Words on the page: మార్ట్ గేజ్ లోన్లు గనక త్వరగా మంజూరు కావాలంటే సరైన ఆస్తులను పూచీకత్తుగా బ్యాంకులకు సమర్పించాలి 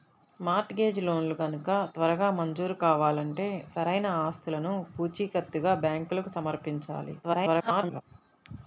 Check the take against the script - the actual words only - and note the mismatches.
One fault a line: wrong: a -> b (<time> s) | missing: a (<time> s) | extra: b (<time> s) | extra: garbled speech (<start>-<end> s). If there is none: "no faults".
extra: garbled speech (7.2-8.0 s)